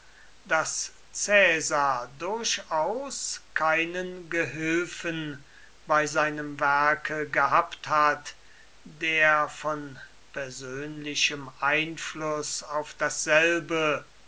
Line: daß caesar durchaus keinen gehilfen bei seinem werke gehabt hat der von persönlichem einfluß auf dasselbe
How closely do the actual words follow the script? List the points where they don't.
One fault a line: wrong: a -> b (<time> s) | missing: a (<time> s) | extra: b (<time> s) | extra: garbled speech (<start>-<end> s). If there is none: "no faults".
no faults